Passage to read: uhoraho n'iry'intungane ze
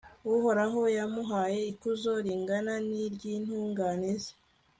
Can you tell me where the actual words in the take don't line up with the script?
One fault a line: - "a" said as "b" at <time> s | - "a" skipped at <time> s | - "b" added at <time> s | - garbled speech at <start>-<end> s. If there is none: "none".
- "yamuhaye ikuzo ringana" added at 1.0 s